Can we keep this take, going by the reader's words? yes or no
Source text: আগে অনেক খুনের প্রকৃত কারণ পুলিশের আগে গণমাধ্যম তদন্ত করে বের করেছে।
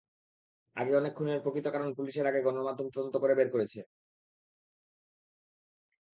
yes